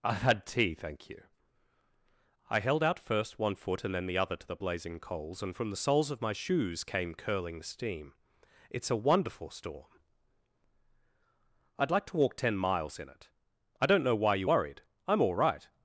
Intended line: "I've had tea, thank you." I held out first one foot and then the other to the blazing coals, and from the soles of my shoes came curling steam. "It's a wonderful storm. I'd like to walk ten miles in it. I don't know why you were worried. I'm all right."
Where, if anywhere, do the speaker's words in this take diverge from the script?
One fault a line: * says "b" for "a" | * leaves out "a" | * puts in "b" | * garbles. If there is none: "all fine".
* leaves out "were"